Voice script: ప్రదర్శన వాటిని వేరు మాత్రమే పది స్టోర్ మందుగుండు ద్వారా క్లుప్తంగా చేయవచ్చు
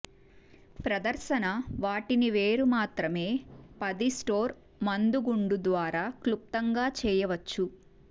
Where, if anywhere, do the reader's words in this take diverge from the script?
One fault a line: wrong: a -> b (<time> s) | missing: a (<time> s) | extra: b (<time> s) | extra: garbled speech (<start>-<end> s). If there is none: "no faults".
no faults